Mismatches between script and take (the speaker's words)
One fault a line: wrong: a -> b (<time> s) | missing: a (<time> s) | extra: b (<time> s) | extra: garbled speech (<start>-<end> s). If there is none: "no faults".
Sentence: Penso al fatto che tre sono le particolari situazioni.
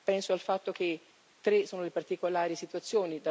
no faults